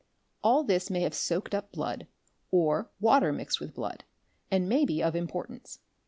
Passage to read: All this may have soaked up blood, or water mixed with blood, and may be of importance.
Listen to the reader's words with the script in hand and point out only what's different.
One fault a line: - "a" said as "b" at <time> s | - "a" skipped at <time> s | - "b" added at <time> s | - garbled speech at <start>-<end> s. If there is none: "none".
none